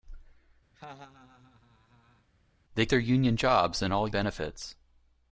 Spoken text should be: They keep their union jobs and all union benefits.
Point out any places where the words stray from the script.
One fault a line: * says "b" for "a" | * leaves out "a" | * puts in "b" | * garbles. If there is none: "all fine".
* leaves out "keep"
* leaves out "union"